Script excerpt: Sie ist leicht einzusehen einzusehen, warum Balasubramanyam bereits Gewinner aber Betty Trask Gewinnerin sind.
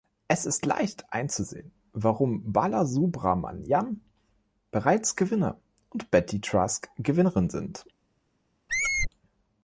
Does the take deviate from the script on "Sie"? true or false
true